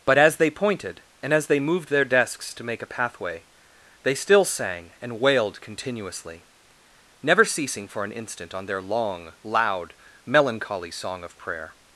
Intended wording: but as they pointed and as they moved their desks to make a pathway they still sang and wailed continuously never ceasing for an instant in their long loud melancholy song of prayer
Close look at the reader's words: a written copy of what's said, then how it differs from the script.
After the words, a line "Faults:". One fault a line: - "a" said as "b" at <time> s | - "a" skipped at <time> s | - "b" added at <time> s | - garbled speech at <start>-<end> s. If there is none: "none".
but as they pointed and as they moved their desks to make a pathway they still sang and wailed continuously never ceasing for an instant on their long loud melancholy song of prayer
Faults:
- "in" said as "on" at 8.5 s